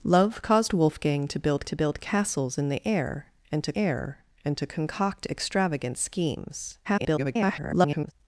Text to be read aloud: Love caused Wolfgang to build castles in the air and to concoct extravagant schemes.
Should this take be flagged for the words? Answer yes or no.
yes